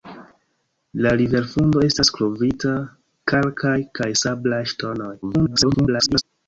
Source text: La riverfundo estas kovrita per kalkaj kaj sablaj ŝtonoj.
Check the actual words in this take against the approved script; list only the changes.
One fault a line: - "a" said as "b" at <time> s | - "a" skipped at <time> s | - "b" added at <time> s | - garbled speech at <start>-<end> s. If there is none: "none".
- "per" skipped at 2.7 s
- garbled speech at 5.2-6.2 s